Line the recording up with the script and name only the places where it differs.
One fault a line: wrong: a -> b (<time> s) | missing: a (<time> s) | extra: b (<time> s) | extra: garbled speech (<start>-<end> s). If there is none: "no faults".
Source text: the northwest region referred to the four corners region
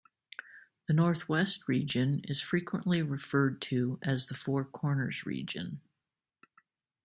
extra: is frequently (2.2 s)
extra: as (4.0 s)